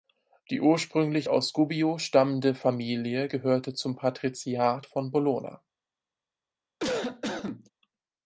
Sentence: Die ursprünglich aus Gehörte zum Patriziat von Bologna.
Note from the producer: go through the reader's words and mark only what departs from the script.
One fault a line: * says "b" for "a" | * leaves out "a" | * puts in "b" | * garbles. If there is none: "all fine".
* puts in "Gubbio stammende Familie"